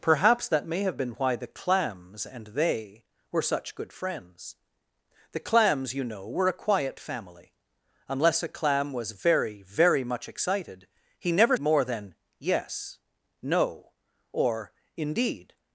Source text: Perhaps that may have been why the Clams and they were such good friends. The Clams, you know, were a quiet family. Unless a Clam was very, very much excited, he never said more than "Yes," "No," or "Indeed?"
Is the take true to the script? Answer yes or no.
no